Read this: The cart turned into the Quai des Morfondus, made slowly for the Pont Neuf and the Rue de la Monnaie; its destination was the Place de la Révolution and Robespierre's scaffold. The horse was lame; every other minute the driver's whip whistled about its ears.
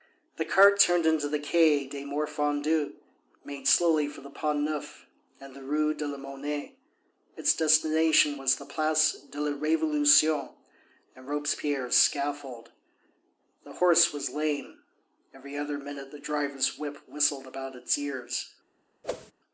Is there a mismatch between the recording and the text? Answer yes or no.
no